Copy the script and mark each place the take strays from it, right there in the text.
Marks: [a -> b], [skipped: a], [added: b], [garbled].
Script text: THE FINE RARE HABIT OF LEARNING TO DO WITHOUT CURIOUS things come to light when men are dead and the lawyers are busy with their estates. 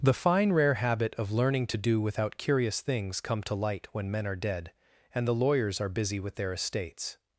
THE FINE RARE HABIT OF LEARNING TO DO WITHOUT CURIOUS things come to light when men are dead and the lawyers are busy with their estates.